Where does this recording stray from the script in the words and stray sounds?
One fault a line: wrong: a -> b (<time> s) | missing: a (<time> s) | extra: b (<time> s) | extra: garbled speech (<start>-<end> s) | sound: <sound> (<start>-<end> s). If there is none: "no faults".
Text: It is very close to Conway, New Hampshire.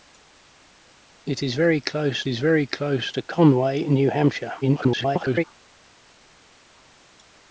extra: is very close (2.3 s)
extra: garbled speech (4.6-5.4 s)